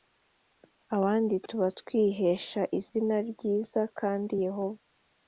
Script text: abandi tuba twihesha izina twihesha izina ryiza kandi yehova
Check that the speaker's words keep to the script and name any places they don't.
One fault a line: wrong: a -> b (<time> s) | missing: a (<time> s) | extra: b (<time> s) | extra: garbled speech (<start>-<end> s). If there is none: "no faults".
missing: twihesha izina (3.1 s)